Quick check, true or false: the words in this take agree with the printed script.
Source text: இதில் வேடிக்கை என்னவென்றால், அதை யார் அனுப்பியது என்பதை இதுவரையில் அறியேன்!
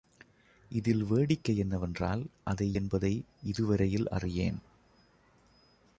false